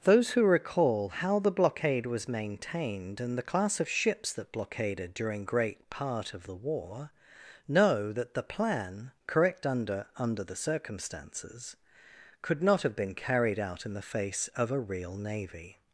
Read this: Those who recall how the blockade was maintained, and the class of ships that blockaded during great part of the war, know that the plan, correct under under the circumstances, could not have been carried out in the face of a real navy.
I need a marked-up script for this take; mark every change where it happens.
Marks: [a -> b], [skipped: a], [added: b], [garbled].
Those who recall how the blockade was maintained, and the class of ships that blockaded during great part of the war, know that the plan, correct under under the circumstances, could not have been carried out in the face of a real navy.